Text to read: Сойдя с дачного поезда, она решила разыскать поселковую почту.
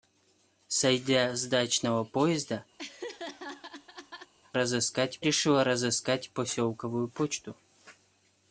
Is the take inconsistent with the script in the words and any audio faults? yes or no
yes